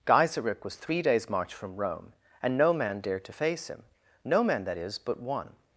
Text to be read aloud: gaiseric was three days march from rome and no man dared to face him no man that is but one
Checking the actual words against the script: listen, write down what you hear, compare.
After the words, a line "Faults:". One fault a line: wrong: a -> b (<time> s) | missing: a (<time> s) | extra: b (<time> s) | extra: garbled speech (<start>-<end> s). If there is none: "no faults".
gaiseric was three days march from rome and no man dared to face him no man that is but one
Faults:
no faults